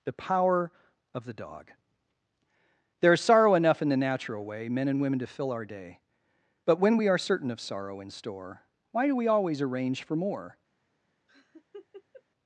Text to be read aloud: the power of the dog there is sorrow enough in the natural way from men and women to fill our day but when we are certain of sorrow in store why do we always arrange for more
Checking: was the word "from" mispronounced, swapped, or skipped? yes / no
yes